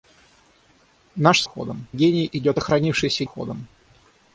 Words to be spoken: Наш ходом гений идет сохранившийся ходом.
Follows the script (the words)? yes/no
yes